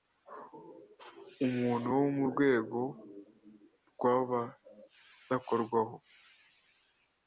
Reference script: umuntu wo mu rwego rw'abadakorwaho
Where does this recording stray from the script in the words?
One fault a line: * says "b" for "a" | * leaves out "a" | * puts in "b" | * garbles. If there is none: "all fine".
all fine